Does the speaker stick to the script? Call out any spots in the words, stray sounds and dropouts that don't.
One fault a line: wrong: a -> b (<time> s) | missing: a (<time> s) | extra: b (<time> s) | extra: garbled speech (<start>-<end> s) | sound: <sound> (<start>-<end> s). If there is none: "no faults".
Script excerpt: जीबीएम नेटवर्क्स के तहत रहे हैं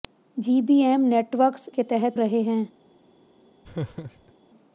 sound: laugh (3.6-4.3 s)